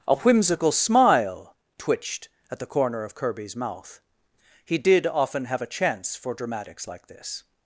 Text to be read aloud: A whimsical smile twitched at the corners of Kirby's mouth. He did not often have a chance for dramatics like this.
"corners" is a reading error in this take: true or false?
true